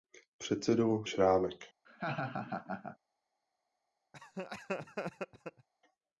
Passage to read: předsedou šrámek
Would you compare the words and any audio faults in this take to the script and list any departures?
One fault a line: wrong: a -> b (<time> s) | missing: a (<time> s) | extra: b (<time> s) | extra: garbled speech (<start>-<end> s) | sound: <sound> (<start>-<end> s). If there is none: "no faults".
sound: laugh (1.8-3.0 s)
sound: laugh (4.1-5.7 s)